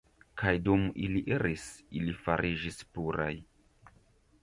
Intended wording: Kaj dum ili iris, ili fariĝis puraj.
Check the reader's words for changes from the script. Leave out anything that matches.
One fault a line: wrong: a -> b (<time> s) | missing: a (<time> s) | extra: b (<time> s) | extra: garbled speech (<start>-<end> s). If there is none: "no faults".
no faults